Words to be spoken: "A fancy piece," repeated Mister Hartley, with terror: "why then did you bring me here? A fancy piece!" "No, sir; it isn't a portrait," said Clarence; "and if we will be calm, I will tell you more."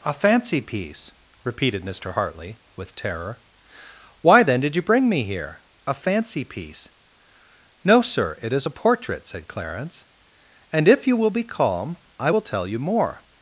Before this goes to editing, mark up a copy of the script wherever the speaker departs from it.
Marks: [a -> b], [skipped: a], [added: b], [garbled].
"A fancy piece," repeated Mister Hartley, with terror: "why then did you bring me here? A fancy piece!" "No, sir; it [isn't -> is] a portrait," said Clarence; "and if [we -> you] will be calm, I will tell you more."